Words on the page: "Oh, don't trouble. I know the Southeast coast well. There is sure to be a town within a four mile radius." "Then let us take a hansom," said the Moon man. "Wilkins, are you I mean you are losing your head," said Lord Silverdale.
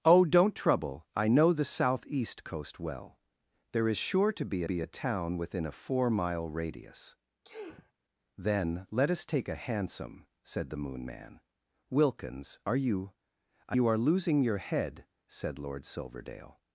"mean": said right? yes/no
no